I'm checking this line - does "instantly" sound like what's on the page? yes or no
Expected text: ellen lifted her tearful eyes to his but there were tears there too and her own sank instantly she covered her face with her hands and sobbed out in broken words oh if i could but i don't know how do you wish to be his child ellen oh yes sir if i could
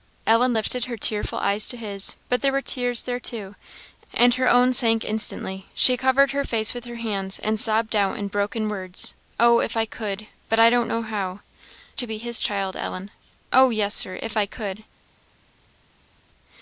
yes